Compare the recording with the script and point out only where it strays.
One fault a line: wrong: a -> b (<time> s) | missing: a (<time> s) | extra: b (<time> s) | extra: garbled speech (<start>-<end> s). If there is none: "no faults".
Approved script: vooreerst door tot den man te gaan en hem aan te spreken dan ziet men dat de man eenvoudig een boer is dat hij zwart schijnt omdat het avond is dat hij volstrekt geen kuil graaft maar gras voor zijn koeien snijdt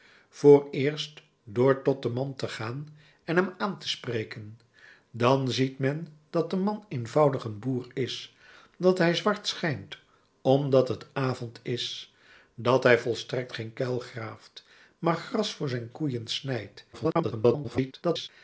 extra: garbled speech (16.9-18.3 s)